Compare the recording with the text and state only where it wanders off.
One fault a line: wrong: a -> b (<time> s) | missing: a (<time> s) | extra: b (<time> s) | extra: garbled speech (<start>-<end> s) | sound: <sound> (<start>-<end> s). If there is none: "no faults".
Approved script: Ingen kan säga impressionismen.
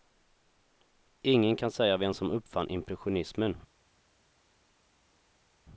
extra: vem som uppfann (2.0 s)